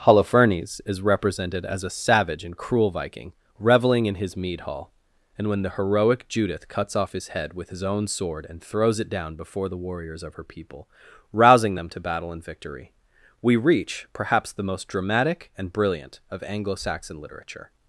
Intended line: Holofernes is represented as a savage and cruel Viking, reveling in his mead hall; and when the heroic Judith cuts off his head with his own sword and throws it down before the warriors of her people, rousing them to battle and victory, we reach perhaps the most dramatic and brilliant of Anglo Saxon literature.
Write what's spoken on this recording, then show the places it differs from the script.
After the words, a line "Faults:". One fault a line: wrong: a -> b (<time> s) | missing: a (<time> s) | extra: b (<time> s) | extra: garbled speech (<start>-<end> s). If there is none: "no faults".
Holofernes is represented as a savage and cruel Viking, reveling in his mead hall; and when the heroic Judith cuts off his head with his own sword and throws it down before the warriors of her people, rousing them to battle and victory, we reach perhaps the most dramatic and brilliant of Anglo Saxon literature.
Faults:
no faults